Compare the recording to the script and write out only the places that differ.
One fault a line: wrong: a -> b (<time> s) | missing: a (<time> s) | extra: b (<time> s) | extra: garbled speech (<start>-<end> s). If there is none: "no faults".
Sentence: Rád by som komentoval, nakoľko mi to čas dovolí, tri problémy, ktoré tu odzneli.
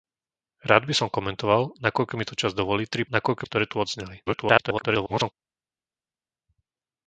wrong: problémy -> nakoľko (3.1 s)
extra: garbled speech (4.3-5.3 s)